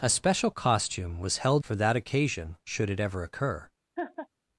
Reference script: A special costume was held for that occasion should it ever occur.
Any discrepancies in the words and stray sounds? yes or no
yes